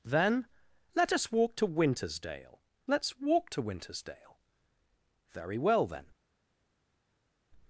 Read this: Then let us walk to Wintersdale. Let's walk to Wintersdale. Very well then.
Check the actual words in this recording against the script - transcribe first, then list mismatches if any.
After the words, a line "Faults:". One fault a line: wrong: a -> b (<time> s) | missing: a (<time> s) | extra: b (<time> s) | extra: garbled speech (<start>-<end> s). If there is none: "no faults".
Then let us walk to Wintersdale. Let's walk to Wintersdale. Very well then.
Faults:
no faults